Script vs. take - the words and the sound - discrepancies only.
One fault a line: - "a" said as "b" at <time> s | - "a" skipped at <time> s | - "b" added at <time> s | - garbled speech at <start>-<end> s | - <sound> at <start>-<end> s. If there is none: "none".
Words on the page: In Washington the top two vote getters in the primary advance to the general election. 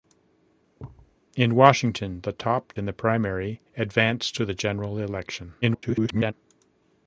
- thud at 0.8-1.2 s
- "two vote getters" skipped at 2.7 s
- garbled speech at 5.6-6.3 s